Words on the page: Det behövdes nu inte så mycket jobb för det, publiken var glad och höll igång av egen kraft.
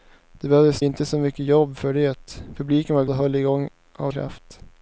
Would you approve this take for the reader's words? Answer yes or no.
no